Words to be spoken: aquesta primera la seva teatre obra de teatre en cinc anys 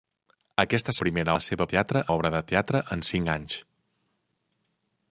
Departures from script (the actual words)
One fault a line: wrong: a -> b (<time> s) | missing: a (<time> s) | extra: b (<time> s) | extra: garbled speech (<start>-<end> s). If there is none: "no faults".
no faults